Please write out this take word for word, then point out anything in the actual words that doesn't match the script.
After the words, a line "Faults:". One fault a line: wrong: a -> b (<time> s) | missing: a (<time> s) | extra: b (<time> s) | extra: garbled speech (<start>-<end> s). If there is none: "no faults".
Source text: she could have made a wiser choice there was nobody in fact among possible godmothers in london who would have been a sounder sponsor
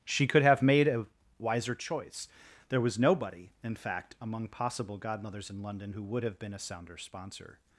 she could have made a wiser choice there was nobody in fact among possible godmothers in london who would have been a sounder sponsor
Faults:
no faults